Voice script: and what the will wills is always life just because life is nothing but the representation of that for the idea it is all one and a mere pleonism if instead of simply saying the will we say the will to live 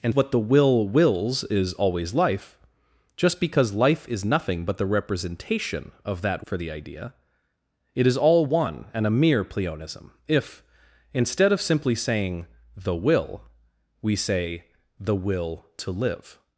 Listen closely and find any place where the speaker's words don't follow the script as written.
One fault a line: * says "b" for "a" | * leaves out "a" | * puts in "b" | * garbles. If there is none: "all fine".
all fine